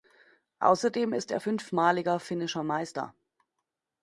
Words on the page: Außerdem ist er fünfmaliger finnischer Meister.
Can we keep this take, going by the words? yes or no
yes